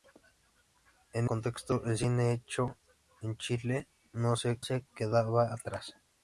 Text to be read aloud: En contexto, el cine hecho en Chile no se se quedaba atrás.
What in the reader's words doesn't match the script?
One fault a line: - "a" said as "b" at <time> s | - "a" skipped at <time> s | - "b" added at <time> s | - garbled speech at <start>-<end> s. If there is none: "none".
none